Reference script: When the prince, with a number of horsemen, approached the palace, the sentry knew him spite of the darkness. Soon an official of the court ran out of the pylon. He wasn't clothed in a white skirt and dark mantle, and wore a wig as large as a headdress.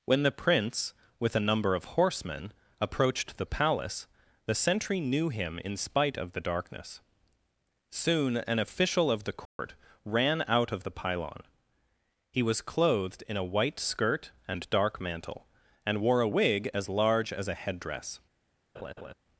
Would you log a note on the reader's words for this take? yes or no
yes